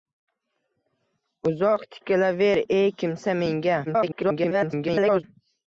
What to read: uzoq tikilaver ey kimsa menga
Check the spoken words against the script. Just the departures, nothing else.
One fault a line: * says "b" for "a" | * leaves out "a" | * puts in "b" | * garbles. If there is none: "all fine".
* garbles